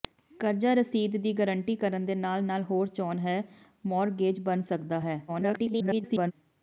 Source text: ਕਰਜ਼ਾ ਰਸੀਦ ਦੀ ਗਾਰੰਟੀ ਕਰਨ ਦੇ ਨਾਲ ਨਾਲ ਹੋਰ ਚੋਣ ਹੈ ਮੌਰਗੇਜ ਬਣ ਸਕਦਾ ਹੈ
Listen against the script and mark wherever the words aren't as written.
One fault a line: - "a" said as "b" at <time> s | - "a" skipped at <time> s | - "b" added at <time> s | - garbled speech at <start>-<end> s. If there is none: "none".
- garbled speech at 5.3-6.3 s